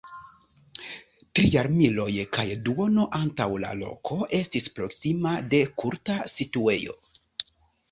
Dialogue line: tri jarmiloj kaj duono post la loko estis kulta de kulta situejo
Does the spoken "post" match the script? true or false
false